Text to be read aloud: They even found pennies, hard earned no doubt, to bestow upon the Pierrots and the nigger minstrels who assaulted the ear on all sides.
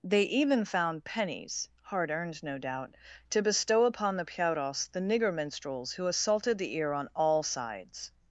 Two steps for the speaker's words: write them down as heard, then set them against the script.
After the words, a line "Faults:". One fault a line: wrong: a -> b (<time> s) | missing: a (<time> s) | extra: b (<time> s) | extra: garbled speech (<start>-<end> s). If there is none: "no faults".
They even found pennies, hard earned no doubt, to bestow upon the Pierrots the nigger minstrels who assaulted the ear on all sides.
Faults:
missing: and (4.9 s)